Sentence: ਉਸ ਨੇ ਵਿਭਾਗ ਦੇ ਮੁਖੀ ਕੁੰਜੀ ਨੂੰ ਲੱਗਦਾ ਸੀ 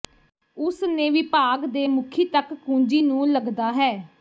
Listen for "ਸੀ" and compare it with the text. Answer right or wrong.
wrong